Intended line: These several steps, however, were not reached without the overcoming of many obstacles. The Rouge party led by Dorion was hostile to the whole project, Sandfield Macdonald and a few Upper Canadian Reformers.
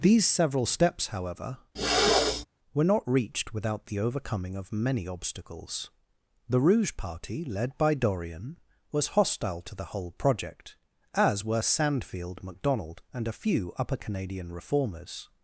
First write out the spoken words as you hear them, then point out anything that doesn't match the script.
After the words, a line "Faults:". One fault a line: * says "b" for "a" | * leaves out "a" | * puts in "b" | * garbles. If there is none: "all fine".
These several steps, however, were not reached without the overcoming of many obstacles. The Rouge party led by Dorion was hostile to the whole project, as were Sandfield Macdonald and a few Upper Canadian Reformers.
Faults:
* puts in "as were"